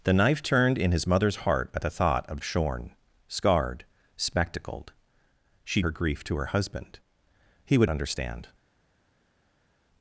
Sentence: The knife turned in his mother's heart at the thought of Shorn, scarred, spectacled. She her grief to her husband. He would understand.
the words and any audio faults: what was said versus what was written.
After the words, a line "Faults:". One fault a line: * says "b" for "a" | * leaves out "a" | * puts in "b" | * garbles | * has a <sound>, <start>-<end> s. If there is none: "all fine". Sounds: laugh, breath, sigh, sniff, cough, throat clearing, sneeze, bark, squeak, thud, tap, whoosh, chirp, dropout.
The knife turned in his mother's heart at the thought of Shorn, scarred, spectacled. She her grief to her husband. He would understand.
Faults:
all fine